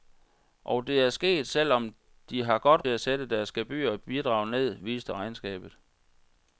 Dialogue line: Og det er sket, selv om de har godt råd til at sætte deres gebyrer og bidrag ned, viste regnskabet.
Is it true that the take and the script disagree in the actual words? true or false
true